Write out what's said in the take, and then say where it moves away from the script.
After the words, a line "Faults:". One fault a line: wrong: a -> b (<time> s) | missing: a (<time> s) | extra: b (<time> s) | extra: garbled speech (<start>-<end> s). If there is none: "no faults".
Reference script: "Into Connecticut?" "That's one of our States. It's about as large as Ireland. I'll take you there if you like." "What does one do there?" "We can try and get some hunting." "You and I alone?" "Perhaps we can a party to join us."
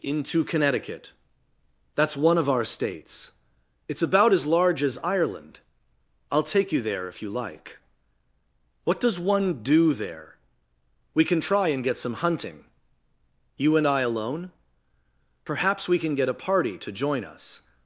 "Into Connecticut?" "That's one of our States. It's about as large as Ireland. I'll take you there if you like." "What does one do there?" "We can try and get some hunting." "You and I alone?" "Perhaps we can get a party to join us."
Faults:
extra: get (16.1 s)